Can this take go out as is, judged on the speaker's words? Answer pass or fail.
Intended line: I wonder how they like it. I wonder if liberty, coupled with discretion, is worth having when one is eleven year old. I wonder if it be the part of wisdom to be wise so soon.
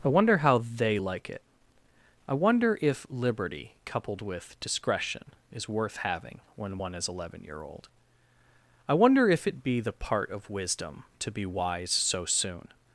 pass